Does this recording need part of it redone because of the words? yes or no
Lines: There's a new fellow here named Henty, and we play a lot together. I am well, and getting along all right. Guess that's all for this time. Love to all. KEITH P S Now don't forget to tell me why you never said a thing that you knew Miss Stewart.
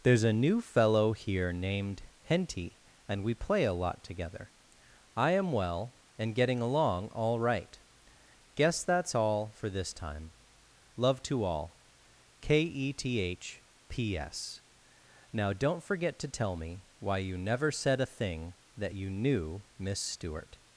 yes